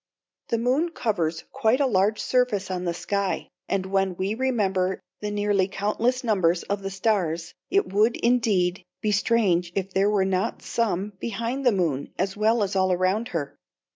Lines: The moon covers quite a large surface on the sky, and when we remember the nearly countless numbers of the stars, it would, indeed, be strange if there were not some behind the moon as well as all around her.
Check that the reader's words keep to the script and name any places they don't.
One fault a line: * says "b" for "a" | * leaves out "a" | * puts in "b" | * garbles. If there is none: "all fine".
all fine